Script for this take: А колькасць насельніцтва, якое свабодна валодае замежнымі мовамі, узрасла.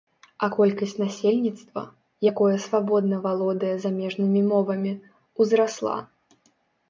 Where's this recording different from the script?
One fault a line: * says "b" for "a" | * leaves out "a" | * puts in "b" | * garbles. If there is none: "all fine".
all fine